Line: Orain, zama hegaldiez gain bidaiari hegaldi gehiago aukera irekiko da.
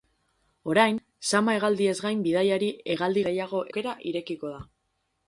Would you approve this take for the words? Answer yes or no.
yes